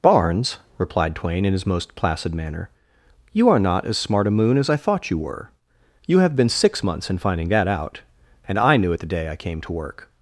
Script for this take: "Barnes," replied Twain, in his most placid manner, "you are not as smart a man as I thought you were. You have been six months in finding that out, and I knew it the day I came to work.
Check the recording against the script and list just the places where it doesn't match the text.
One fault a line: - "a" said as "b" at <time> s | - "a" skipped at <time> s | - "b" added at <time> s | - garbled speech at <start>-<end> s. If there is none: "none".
- "man" said as "moon" at 4.3 s